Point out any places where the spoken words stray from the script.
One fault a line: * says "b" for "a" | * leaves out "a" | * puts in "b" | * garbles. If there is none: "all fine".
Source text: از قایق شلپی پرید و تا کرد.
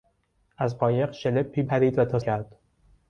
all fine